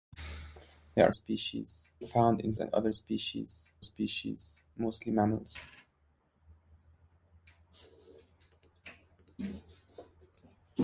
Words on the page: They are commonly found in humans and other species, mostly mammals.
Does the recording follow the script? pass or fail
fail